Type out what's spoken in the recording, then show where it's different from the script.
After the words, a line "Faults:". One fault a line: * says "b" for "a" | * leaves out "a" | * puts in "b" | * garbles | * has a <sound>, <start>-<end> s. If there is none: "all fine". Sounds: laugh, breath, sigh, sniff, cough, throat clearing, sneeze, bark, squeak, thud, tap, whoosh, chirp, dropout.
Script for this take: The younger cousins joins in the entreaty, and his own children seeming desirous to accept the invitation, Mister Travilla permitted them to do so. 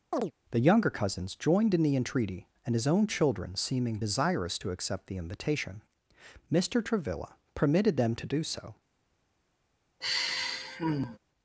The younger cousins joined in the entreaty, and his own children seeming desirous to accept the invitation, Mister Travilla permitted them to do so.
Faults:
* has a chirp, 0.1-0.3 s
* says "joined" for "joins"
* has a sigh, 10.0-11.2 s